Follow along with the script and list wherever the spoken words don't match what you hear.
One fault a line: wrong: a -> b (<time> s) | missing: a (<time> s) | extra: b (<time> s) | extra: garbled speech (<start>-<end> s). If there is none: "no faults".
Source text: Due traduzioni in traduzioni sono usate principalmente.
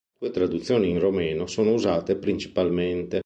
wrong: traduzioni -> romeno (1.0 s)